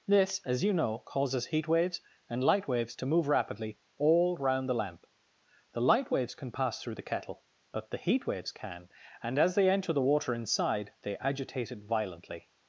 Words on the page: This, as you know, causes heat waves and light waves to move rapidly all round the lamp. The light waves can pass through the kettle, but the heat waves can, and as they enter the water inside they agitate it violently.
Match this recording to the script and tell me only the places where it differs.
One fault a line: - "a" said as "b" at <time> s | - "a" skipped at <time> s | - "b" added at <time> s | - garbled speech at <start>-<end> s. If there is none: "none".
none